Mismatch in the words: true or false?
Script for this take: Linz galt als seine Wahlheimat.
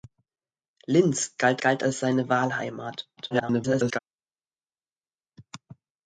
true